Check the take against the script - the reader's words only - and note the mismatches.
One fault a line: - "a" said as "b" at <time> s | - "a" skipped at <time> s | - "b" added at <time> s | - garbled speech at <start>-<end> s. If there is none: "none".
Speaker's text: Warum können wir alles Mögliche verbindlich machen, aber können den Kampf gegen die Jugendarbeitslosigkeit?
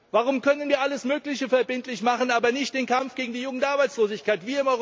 - "können" said as "nicht" at 2.5 s